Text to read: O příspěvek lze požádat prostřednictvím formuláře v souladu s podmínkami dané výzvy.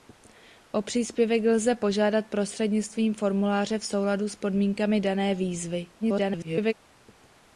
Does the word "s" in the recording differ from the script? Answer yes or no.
no